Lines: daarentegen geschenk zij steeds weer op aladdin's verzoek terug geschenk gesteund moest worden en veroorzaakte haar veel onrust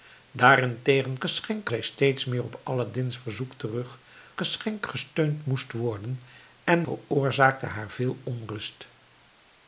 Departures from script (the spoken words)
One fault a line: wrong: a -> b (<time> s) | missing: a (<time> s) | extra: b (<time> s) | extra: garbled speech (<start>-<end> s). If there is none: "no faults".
no faults